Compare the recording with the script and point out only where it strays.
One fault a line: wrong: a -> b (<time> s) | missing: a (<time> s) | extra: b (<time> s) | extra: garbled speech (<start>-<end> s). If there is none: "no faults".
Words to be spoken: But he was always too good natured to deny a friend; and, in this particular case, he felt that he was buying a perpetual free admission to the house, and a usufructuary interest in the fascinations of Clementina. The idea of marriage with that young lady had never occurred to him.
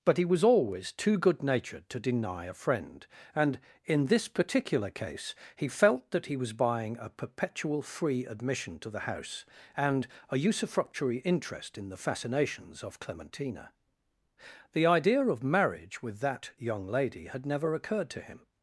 no faults